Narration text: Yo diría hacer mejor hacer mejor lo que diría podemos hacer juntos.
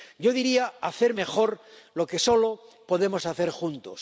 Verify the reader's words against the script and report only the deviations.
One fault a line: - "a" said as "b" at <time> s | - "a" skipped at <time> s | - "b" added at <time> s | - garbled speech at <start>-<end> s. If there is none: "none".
- "hacer mejor" skipped at 1.6 s
- "diría" said as "solo" at 2.2 s